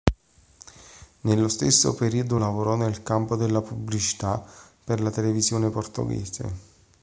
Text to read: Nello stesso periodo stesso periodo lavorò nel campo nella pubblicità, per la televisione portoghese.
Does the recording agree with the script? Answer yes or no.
no